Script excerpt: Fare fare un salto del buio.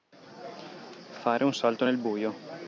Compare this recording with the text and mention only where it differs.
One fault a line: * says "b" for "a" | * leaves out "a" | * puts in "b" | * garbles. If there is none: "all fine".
* leaves out "fare"
* says "nel" for "del"